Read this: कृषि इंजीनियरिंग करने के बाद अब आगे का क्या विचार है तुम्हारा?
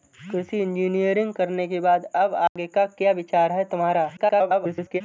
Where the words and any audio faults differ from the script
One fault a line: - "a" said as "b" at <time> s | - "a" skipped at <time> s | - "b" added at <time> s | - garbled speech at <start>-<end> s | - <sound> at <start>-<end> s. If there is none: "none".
- dropout at 2.5-2.6 s
- garbled speech at 4.2-5.0 s